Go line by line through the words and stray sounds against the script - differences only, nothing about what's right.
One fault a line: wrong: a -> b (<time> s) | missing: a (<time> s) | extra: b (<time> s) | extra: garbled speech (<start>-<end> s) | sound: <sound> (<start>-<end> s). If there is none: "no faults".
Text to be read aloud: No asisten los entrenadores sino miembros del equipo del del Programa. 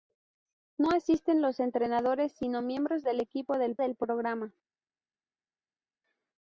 no faults